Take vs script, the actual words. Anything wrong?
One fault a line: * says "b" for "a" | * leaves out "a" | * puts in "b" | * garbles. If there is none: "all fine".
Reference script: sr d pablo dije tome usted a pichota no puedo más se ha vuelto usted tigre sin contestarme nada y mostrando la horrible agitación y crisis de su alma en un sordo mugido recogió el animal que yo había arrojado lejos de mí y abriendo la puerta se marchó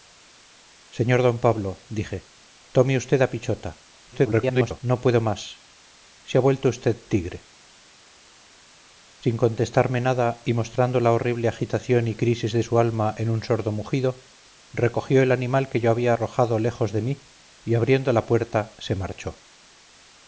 * garbles